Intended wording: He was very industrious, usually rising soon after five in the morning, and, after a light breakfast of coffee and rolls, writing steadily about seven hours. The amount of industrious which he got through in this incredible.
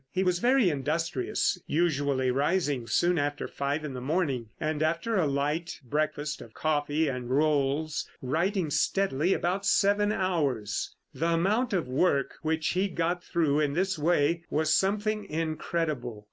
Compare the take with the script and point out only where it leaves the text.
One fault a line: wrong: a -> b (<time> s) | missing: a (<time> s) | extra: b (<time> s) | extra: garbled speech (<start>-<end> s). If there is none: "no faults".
wrong: industrious -> work (11.9 s)
extra: way was something (14.0 s)